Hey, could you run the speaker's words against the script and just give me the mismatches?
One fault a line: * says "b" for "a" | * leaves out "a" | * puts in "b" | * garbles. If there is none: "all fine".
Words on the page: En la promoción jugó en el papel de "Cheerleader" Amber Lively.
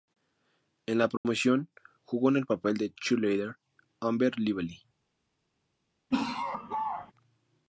all fine